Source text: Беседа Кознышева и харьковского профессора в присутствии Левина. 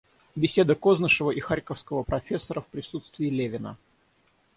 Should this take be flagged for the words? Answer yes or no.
no